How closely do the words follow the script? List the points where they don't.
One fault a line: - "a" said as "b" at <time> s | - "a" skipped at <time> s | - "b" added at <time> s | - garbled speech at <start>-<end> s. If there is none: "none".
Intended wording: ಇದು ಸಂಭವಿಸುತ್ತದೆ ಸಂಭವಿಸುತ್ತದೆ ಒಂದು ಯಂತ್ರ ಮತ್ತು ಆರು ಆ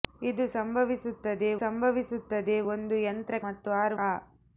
none